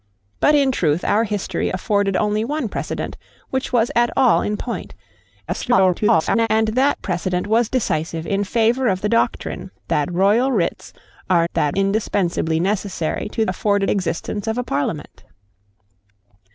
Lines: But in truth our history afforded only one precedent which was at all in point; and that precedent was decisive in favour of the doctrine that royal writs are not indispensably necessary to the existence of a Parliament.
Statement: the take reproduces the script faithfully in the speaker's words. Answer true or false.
false